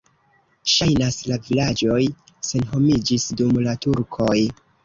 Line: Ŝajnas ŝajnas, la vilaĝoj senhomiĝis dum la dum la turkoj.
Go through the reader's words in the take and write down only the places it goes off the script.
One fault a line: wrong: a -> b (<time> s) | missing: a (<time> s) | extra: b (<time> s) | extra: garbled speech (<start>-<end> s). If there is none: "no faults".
missing: ŝajnas (1.2 s)
missing: dum la (3.8 s)